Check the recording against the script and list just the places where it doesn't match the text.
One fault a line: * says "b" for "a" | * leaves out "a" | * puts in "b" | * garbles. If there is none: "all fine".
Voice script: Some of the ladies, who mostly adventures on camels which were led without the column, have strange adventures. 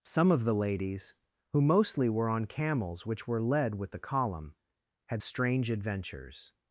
* says "were" for "adventures"
* says "with" for "without"
* says "had" for "have"